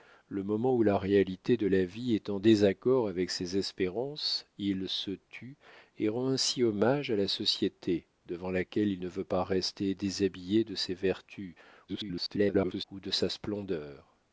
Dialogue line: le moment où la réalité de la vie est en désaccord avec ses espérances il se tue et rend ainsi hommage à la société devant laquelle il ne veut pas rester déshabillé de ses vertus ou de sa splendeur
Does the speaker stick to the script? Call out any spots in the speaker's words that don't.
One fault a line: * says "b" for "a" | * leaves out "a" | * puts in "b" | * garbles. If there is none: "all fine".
* garbles